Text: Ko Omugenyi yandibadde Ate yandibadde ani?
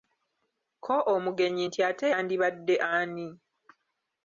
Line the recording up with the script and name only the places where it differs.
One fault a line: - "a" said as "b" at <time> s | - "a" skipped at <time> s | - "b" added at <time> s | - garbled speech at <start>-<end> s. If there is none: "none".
- "yandibadde" said as "nti" at 1.7 s